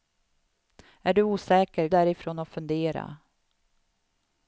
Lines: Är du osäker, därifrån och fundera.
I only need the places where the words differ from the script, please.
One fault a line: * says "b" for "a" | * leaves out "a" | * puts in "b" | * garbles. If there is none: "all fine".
all fine